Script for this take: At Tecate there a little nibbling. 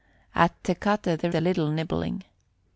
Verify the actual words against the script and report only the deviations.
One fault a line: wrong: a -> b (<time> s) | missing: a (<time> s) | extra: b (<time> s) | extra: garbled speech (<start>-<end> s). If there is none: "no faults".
no faults